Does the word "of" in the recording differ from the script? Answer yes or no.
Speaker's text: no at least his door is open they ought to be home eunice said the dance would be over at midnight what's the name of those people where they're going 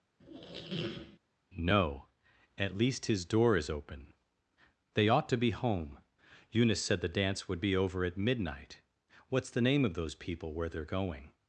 no